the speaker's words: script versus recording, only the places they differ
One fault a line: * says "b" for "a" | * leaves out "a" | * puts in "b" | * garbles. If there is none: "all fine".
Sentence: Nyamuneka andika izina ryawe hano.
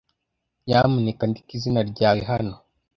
all fine